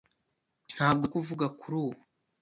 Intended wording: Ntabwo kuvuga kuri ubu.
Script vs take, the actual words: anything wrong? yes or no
no